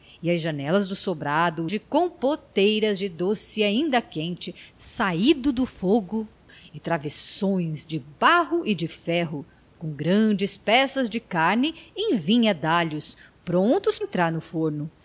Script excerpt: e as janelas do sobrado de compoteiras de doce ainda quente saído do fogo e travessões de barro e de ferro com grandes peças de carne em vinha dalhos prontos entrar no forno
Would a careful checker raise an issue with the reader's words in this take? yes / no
no